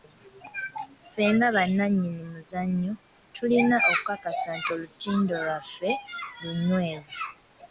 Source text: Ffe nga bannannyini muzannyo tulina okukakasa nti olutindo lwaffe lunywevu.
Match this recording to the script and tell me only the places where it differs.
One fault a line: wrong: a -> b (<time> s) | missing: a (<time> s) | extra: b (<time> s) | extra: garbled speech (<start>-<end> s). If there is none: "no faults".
no faults